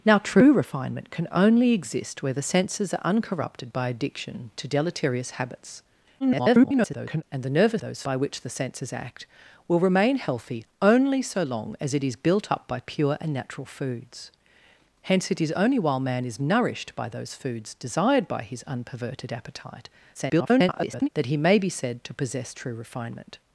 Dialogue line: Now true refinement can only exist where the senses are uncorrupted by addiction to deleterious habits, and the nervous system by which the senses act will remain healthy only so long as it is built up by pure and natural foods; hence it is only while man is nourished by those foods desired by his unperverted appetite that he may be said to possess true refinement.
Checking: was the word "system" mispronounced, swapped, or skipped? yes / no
yes